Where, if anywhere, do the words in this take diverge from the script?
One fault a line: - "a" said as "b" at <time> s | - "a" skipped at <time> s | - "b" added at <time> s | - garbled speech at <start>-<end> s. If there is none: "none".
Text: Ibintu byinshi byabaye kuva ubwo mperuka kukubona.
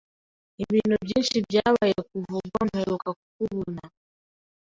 none